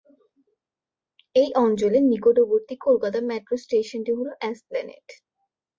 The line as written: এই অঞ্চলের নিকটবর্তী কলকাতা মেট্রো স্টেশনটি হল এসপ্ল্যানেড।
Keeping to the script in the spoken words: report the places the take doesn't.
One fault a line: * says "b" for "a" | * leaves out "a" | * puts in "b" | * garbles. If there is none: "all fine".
all fine